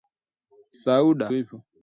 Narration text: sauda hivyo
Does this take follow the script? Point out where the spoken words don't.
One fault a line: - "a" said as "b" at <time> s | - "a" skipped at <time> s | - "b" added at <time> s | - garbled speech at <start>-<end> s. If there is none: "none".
none